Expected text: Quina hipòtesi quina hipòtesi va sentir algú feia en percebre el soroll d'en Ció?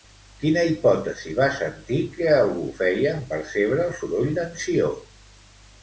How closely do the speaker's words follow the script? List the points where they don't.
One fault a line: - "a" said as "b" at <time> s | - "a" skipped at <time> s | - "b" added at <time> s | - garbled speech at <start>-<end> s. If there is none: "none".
- "quina hipòtesi" skipped at 1.3 s
- "que" added at 2.2 s